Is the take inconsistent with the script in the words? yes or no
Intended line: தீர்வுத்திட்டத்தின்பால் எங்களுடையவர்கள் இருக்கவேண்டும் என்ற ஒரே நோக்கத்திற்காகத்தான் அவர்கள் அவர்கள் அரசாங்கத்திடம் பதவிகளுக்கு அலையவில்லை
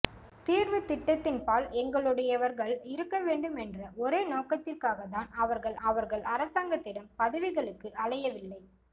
no